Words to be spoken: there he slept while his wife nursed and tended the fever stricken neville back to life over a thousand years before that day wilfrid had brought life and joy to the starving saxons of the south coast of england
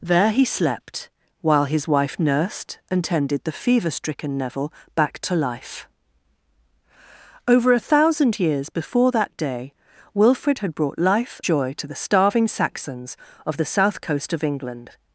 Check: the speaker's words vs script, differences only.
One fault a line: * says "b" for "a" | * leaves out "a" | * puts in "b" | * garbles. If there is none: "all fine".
* leaves out "and"